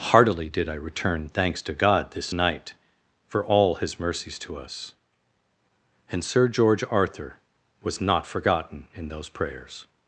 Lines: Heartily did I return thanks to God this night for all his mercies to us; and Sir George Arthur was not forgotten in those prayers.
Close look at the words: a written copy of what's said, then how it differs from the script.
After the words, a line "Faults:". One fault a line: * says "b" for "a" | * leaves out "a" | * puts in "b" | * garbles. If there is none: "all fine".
Heartily did I return thanks to God this night for all his mercies to us; and Sir George Arthur was not forgotten in those prayers.
Faults:
all fine